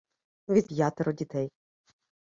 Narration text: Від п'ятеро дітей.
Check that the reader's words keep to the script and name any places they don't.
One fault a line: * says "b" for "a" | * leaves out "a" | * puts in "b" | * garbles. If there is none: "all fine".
all fine